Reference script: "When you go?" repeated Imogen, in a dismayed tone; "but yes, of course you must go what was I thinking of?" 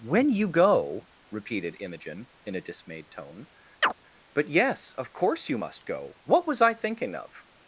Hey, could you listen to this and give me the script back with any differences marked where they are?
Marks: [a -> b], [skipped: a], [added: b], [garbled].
"When you go?" repeated Imogen, in a dismayed tone; "but yes, of course you must go what was I thinking of?"